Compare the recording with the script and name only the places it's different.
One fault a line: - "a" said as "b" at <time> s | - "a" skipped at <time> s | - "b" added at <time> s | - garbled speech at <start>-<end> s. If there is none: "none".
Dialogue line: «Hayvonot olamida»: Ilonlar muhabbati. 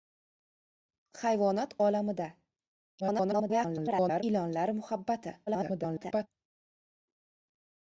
- garbled speech at 3.0-4.2 s
- garbled speech at 5.5-6.3 s